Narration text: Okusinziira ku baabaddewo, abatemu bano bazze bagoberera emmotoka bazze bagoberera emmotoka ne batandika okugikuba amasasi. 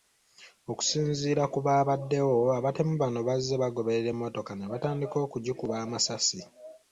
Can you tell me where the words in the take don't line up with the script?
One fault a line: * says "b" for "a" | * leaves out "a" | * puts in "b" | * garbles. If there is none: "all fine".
* leaves out "bazze bagoberera emmotoka"